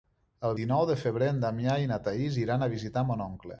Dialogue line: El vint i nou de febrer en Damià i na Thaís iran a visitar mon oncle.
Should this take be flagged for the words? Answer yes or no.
yes